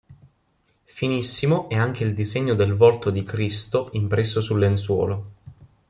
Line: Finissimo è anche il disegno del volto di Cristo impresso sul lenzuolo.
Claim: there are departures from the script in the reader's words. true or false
false